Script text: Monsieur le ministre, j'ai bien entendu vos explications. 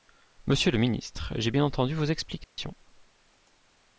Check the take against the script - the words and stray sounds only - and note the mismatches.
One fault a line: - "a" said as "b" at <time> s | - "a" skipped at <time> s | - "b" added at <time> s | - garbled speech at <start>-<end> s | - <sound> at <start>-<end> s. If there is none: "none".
- dropout at 2.4-2.6 s